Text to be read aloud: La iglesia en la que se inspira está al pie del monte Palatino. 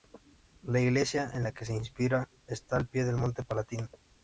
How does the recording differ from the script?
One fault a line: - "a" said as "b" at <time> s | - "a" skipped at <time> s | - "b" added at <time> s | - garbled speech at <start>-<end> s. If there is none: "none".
none